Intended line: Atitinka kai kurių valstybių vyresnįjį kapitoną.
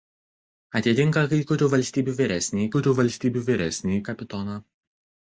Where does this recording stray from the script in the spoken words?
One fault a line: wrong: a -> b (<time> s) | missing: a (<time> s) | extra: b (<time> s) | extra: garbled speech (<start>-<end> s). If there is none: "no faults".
extra: kurių valstybių vyresnįjį (2.8 s)